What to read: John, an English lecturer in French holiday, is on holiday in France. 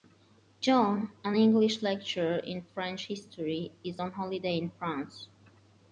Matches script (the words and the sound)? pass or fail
fail